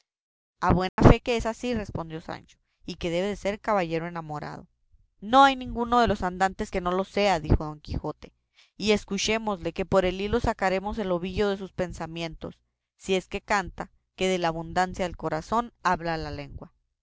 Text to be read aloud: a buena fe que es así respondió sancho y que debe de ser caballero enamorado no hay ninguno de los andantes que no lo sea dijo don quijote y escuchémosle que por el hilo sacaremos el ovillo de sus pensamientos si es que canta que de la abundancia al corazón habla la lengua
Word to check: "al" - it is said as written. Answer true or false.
false